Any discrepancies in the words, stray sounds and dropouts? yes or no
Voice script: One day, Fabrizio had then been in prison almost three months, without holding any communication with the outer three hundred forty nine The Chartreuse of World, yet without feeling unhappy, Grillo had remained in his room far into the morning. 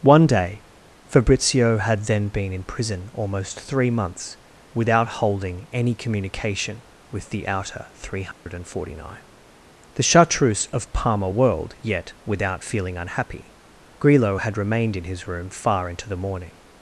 yes